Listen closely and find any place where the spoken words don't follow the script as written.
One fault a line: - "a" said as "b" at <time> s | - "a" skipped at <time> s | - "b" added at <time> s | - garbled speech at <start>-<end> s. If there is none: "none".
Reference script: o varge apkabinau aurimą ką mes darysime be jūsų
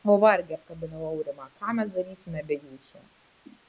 none